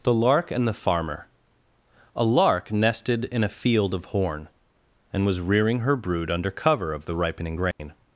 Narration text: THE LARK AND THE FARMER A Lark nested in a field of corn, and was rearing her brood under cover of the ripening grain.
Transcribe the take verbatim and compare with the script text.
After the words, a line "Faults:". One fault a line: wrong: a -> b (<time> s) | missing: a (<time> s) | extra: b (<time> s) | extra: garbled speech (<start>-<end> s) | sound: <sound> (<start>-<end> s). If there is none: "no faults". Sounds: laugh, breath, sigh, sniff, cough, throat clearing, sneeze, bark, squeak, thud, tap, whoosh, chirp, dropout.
THE LARK AND THE FARMER A Lark nested in a field of horn, and was rearing her brood under cover of the ripening grain.
Faults:
wrong: corn -> horn (4.1 s)
sound: dropout (7.7-7.8 s)